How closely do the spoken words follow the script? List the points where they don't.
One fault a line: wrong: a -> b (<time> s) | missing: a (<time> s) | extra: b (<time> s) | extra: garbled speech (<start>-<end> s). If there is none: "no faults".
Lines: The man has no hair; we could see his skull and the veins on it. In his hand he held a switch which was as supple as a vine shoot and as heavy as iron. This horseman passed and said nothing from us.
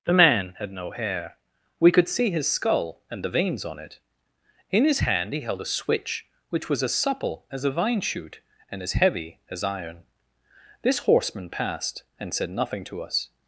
wrong: has -> had (0.6 s)
wrong: from -> to (12.8 s)